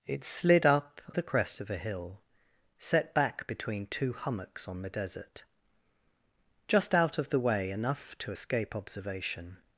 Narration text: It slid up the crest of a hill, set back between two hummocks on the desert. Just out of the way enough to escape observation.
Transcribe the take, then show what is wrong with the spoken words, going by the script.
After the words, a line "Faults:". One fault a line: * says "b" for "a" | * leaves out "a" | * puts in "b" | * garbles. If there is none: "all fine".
It slid up the crest of a hill, set back between two hummocks on the desert. Just out of the way enough to escape observation.
Faults:
all fine